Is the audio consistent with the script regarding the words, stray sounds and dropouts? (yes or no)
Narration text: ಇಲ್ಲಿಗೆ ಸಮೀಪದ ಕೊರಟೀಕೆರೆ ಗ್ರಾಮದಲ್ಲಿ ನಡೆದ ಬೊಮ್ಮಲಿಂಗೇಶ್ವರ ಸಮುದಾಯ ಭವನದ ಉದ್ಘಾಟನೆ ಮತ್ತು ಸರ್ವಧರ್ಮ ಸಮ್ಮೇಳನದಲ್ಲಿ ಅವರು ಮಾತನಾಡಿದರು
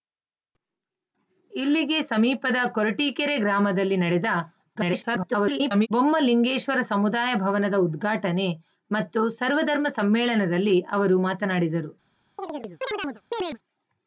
no